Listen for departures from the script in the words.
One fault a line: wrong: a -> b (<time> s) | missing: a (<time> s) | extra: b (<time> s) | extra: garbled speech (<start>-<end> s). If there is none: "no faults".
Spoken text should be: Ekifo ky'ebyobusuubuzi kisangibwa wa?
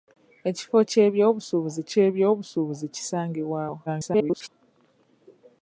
extra: ky'ebyobusuubuzi (1.9 s)
extra: garbled speech (3.9-4.5 s)